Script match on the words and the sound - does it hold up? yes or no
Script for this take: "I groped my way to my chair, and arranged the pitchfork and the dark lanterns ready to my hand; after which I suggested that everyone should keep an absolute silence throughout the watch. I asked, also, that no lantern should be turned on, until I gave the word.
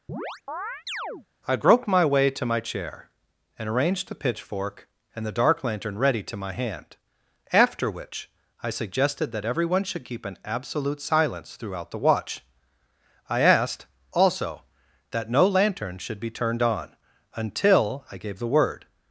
no